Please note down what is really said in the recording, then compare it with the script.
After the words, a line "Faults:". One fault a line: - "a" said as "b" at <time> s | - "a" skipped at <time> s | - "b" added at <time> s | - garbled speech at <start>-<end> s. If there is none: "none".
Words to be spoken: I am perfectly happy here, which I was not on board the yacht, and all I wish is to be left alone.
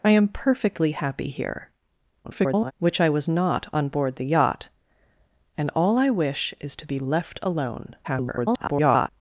I am perfectly happy here, [garbled] which I was not on board the yacht, and all I wish is to be left alone. [garbled]
Faults:
- garbled speech at 2.2-2.7 s
- garbled speech at 8.0-9.1 s